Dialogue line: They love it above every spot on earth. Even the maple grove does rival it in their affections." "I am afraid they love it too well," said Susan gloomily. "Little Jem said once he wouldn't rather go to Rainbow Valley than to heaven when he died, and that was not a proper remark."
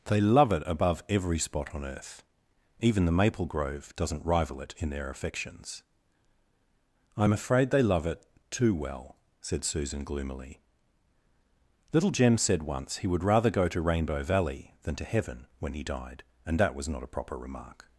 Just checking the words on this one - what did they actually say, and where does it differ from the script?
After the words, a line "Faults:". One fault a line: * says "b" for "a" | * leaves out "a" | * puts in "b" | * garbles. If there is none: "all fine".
They love it above every spot on earth. Even the maple grove doesn't rival it in their affections." "I am afraid they love it too well," said Susan gloomily. "Little Jem said once he would rather go to Rainbow Valley than to heaven when he died, and that was not a proper remark."
Faults:
* says "doesn't" for "does"
* says "would" for "wouldn't"